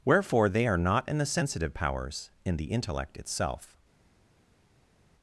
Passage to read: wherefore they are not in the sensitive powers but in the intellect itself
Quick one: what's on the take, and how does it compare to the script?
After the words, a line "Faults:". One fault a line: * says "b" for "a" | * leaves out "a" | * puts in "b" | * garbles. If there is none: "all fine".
wherefore they are not in the sensitive powers in the intellect itself
Faults:
* leaves out "but"